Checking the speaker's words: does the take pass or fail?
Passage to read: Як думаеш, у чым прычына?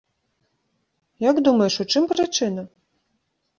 pass